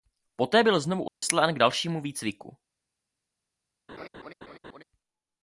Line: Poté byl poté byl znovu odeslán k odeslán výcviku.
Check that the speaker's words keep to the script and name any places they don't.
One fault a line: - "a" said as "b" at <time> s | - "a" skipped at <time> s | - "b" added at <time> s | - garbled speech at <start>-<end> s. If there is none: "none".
- "poté byl" skipped at 0.8 s
- "odeslán" said as "dalšímu" at 1.6 s